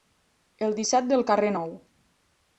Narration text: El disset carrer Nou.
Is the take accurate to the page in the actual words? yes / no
no